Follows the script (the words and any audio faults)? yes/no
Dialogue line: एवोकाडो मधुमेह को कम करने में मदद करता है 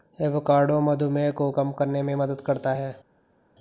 yes